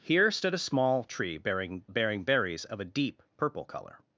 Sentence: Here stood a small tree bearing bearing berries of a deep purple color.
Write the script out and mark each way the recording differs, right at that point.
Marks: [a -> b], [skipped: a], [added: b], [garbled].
Here stood a small tree bearing bearing berries of a deep purple color.